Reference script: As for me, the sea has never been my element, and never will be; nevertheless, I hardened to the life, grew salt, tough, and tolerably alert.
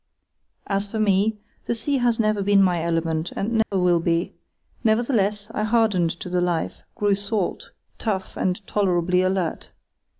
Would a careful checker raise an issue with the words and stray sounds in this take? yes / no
yes